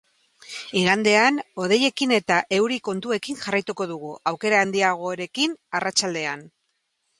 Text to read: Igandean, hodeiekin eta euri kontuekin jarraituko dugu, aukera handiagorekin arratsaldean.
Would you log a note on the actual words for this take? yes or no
no